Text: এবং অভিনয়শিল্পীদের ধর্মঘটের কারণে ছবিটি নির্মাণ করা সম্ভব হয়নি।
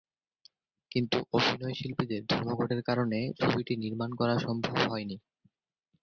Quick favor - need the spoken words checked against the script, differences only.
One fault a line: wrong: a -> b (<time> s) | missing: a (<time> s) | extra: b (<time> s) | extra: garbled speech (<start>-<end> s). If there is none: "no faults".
wrong: এবং -> কিন্তু (0.9 s)